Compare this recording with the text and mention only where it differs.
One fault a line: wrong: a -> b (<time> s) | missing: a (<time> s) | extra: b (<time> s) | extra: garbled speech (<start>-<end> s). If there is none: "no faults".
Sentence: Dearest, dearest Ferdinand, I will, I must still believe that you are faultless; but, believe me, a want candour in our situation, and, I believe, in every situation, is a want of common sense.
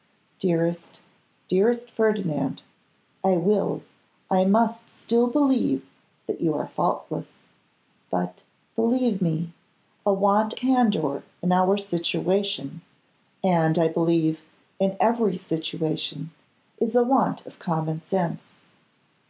no faults